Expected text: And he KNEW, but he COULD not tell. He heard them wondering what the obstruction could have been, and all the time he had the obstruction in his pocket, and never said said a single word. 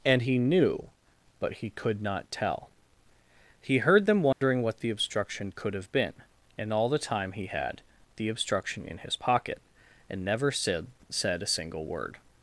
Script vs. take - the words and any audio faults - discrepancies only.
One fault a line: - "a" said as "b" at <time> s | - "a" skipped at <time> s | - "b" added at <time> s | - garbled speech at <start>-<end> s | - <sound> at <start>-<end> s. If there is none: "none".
- dropout at 4.3-4.4 s